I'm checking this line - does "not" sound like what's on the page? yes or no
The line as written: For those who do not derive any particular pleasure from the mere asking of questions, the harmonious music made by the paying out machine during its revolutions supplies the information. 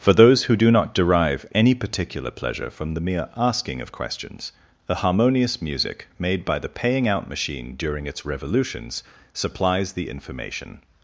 yes